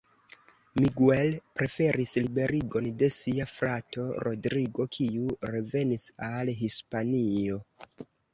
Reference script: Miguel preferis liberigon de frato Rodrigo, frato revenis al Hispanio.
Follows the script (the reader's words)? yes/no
no